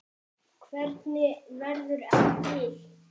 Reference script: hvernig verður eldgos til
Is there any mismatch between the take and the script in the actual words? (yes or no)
yes